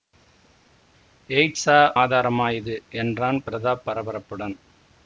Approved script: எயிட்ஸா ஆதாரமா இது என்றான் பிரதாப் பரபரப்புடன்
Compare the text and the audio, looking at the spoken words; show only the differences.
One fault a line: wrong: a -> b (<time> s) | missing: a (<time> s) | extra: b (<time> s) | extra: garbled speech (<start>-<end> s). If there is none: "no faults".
no faults